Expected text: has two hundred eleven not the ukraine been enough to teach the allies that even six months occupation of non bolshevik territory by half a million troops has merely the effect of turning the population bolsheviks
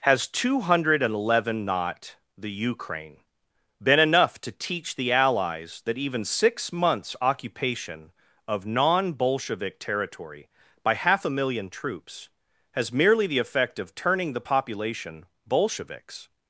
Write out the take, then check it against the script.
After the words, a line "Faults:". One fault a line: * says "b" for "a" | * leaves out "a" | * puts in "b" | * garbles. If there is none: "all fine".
has two hundred eleven not the ukraine been enough to teach the allies that even six months occupation of non bolshevik territory by half a million troops has merely the effect of turning the population bolsheviks
Faults:
all fine